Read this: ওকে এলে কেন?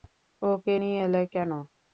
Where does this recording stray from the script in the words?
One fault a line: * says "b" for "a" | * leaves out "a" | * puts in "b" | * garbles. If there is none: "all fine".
* puts in "নিয়ে"